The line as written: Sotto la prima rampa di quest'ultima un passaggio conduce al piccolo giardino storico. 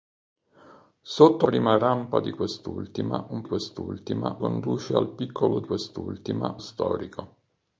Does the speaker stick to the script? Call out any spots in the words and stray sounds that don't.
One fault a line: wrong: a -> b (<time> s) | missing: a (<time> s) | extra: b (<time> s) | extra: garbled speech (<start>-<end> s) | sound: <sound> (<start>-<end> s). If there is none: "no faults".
missing: la (1.5 s)
wrong: passaggio -> quest'ultima (3.4 s)
wrong: giardino -> quest'ultima (5.6 s)